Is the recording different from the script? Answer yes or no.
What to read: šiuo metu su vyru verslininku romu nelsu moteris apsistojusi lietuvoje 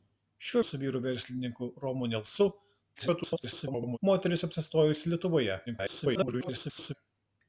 yes